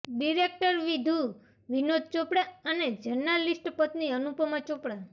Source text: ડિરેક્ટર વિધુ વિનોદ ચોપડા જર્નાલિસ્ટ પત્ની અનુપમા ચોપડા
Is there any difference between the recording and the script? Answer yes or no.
yes